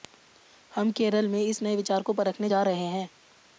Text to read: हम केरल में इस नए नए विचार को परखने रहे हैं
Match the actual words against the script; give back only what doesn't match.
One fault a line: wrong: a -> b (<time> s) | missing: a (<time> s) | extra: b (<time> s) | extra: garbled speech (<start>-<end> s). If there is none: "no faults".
missing: नए (1.8 s)
extra: जा (2.5 s)